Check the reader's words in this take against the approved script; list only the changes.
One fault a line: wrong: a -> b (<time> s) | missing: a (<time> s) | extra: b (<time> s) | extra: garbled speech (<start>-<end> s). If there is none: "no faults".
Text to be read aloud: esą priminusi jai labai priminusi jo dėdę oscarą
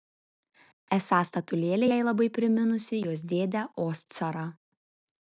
wrong: priminusi -> statulėlė (1.3 s)
wrong: jo -> jos (3.1 s)